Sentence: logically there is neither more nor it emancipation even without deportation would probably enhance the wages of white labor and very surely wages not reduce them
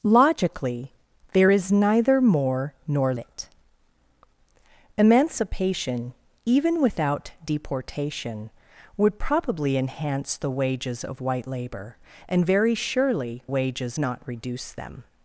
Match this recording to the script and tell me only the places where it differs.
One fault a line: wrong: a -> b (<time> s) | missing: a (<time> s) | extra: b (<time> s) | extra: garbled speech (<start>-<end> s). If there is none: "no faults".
no faults